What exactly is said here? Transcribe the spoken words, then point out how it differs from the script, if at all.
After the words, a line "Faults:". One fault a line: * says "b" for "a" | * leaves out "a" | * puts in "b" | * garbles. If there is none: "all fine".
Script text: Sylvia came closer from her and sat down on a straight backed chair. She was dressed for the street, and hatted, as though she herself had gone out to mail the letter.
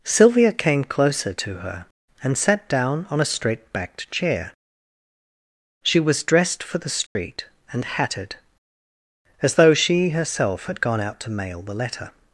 Sylvia came closer to her and sat down on a straight backed chair. She was dressed for the street, and hatted, as though she herself had gone out to mail the letter.
Faults:
* says "to" for "from"